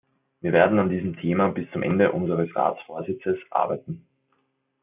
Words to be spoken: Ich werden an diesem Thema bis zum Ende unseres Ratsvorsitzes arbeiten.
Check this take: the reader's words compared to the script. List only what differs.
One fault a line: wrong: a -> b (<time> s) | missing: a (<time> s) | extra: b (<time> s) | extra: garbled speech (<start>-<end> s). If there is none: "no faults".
wrong: Ich -> Wir (0.4 s)